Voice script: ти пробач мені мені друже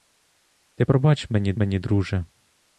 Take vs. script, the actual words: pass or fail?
pass